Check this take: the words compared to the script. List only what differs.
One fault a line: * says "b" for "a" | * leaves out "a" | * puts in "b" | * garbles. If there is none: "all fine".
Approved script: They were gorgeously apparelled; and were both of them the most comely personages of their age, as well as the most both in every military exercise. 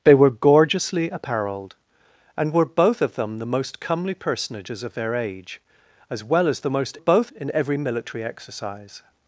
all fine